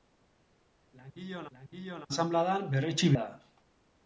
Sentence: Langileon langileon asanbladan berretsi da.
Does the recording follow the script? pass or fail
pass